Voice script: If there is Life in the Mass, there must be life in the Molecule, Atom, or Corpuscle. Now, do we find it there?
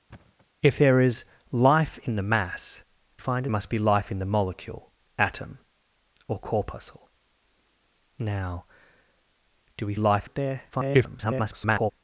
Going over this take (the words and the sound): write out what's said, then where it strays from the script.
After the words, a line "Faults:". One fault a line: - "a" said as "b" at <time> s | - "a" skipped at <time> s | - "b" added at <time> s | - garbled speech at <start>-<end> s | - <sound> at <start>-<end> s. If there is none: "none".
If there is Life in the Mass, find must be life in the Molecule, Atom, or Corpuscle. Now, do we life it there? [garbled]
Faults:
- thud at 0.1-0.5 s
- "there" said as "find" at 3.2 s
- "find" said as "life" at 9.9 s
- garbled speech at 10.7-11.9 s